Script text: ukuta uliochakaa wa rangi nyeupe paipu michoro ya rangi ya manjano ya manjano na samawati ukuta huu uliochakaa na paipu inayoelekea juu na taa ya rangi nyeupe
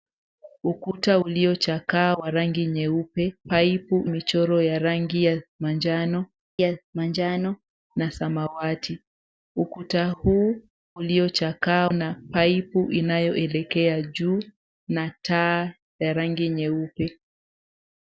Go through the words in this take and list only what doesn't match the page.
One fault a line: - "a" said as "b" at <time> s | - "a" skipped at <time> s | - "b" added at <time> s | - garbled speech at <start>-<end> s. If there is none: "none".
none